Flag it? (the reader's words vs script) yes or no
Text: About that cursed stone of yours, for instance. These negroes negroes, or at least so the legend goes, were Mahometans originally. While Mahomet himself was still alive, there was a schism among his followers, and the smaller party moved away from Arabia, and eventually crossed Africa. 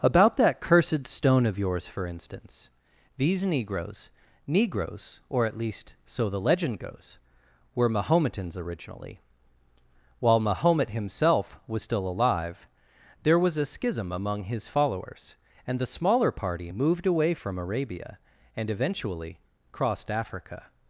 no